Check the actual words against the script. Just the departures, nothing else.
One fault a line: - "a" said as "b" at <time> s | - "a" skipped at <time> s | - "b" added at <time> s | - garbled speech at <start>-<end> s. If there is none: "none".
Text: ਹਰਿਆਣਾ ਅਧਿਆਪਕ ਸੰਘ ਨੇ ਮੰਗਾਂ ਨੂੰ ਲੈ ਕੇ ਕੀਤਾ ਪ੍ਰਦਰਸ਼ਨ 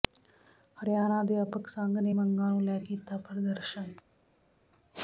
- "ਕੇ" skipped at 2.8 s